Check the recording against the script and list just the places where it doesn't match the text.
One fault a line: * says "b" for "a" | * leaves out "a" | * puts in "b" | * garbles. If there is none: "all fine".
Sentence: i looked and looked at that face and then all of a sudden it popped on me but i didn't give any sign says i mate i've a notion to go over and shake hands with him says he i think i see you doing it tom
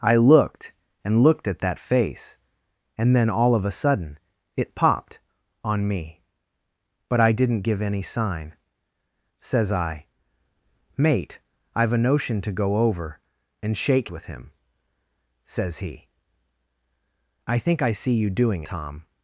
* leaves out "hands"
* leaves out "it"